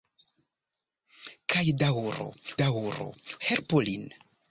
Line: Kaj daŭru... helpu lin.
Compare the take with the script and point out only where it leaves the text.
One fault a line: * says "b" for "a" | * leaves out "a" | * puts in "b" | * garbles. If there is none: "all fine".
* puts in "daŭru"